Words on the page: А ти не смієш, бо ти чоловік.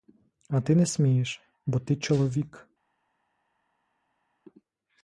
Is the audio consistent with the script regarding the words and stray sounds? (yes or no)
yes